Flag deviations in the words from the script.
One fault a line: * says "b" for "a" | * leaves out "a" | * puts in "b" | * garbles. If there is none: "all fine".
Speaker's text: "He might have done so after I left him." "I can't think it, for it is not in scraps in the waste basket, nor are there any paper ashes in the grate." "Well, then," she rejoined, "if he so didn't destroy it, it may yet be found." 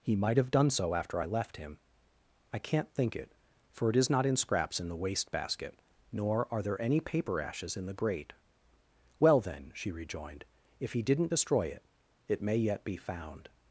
* leaves out "so"